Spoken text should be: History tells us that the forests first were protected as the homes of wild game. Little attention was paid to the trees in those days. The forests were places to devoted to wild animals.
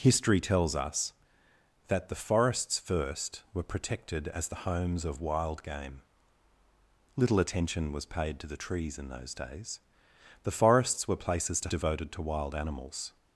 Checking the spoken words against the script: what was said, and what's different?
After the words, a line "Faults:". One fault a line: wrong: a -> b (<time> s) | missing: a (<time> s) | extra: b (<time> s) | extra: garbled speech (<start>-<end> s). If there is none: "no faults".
History tells us that the forests first were protected as the homes of wild game. Little attention was paid to the trees in those days. The forests were places to devoted to wild animals.
Faults:
no faults